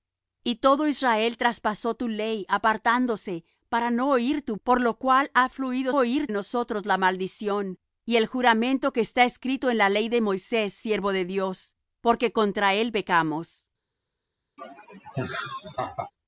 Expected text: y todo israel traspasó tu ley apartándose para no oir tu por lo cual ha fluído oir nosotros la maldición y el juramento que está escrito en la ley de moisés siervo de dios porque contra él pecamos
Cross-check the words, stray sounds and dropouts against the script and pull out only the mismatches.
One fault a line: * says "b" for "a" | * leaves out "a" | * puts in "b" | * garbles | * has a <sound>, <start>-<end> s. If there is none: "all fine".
* has a laugh, 14.6-16.1 s